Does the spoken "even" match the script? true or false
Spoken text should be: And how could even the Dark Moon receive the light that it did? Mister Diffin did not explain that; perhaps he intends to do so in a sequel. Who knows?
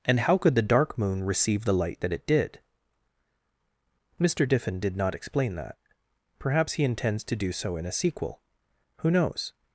false